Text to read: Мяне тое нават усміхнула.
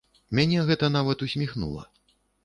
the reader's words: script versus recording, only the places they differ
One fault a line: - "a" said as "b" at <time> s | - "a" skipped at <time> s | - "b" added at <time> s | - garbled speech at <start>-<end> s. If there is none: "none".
- "тое" said as "гэта" at 0.7 s